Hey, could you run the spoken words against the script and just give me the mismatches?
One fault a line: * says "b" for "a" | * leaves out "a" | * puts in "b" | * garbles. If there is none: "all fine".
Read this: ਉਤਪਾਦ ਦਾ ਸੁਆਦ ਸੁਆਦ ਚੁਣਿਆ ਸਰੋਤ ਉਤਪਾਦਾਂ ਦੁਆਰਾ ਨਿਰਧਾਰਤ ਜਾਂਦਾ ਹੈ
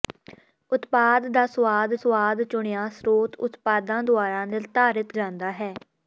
all fine